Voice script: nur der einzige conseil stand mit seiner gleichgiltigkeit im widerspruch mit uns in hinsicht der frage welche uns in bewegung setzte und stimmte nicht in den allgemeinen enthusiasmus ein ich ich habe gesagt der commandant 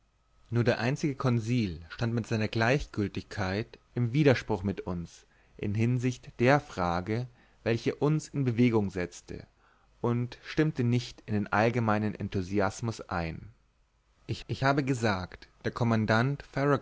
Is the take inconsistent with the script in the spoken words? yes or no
no